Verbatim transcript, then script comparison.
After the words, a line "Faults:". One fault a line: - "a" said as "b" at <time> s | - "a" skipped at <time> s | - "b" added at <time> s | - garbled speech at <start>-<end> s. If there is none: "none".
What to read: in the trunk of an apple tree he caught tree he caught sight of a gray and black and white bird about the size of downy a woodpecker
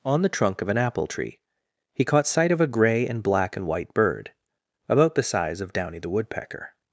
on the trunk of an apple tree he caught sight of a gray and black and white bird about the size of downy the woodpecker
Faults:
- "in" said as "on" at 0.0 s
- "tree he caught" skipped at 2.2 s
- "a" said as "the" at 6.0 s